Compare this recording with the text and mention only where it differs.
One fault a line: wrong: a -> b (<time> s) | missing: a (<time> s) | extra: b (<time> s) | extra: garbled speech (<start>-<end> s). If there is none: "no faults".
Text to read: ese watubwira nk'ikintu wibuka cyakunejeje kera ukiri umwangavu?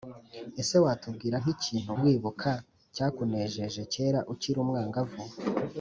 no faults